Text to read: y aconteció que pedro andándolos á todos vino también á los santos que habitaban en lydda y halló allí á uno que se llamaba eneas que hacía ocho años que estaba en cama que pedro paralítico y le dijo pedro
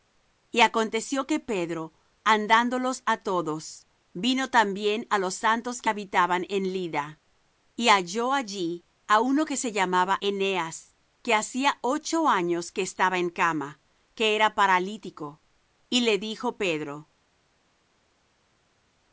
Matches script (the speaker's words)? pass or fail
fail